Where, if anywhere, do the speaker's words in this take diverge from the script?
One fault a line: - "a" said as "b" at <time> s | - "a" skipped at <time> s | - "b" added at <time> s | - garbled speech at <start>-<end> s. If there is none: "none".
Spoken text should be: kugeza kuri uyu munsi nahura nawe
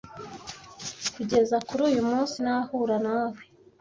none